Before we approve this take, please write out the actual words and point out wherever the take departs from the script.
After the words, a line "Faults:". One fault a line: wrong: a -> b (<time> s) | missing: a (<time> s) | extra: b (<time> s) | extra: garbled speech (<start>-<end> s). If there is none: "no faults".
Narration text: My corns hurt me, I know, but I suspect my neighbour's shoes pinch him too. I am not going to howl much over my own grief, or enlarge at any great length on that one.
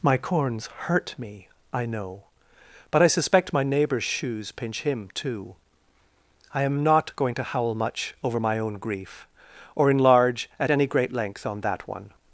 My corns hurt me, I know, but I suspect my neighbour's shoes pinch him too. I am not going to howl much over my own grief, or enlarge at any great length on that one.
Faults:
no faults